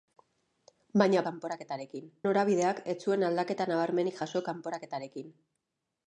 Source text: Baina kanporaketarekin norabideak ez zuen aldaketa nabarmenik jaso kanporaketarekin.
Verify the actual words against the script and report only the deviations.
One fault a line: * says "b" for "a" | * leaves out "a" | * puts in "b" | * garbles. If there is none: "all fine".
all fine